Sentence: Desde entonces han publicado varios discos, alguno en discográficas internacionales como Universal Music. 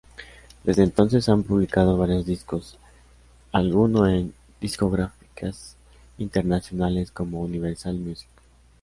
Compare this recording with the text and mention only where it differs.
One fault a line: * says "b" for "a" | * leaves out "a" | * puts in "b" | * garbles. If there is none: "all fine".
all fine